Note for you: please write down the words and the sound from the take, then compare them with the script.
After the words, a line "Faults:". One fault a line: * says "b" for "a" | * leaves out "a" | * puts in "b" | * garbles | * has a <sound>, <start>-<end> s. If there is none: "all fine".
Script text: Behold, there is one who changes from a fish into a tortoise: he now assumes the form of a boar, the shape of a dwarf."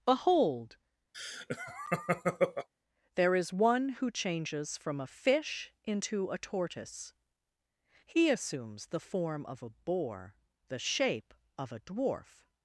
Behold, there is one who changes from a fish into a tortoise: he assumes the form of a boar, the shape of a dwarf."
Faults:
* has a laugh, 1.1-2.7 s
* leaves out "now"